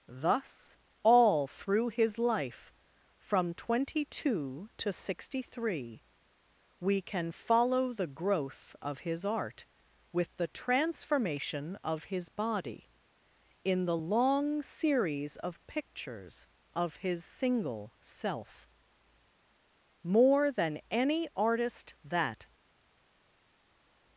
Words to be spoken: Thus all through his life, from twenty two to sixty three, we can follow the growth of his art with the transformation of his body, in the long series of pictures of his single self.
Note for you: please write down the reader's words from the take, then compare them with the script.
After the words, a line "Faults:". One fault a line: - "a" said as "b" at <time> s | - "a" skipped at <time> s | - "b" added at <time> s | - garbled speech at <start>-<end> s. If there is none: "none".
Thus all through his life, from twenty two to sixty three, we can follow the growth of his art with the transformation of his body, in the long series of pictures of his single self. More than any artist that
Faults:
- "More than any artist that" added at 20.0 s